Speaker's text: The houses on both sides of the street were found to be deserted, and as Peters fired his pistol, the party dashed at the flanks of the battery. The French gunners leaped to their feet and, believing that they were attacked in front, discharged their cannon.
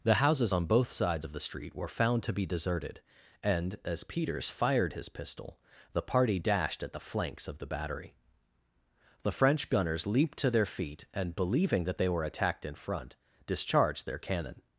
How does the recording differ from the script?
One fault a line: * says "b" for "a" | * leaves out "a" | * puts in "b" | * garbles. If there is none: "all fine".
all fine